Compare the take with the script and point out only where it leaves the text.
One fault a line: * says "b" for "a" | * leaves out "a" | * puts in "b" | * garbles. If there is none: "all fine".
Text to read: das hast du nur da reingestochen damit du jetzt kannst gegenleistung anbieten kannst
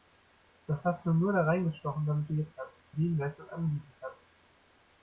all fine